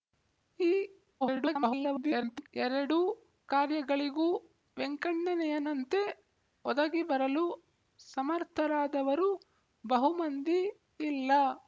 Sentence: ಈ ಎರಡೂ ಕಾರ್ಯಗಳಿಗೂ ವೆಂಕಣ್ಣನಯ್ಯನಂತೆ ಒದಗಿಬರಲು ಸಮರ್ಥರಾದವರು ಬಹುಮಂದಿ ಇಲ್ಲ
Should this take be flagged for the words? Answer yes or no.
yes